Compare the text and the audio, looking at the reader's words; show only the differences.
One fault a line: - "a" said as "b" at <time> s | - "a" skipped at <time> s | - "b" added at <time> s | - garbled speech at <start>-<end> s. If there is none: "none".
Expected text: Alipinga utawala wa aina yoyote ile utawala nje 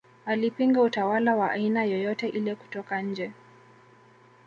- "utawala" said as "kutoka" at 2.5 s